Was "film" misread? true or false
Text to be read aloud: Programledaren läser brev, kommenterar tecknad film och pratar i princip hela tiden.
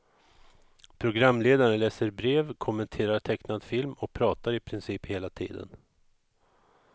false